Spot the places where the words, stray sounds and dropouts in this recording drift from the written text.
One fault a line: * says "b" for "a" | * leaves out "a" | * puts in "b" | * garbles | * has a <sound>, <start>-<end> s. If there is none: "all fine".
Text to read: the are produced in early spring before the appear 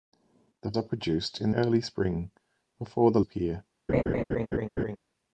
* has a laugh, 3.9-5.0 s